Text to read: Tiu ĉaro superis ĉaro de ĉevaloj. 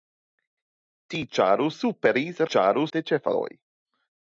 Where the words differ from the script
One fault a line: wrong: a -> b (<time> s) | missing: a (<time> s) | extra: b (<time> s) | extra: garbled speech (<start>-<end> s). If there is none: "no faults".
no faults